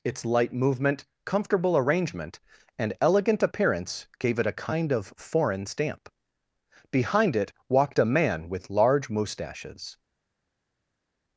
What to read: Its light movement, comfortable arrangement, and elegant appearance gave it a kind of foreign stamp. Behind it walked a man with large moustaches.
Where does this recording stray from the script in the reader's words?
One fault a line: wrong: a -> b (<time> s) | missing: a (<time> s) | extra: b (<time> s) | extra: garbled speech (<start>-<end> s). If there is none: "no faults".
no faults